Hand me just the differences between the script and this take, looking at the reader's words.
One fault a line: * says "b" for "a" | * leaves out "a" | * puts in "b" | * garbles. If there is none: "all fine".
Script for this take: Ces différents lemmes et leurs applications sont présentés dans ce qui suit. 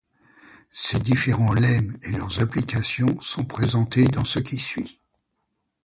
all fine